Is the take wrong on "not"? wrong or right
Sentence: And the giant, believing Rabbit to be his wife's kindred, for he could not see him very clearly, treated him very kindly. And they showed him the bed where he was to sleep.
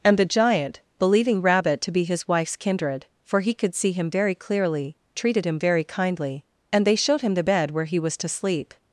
wrong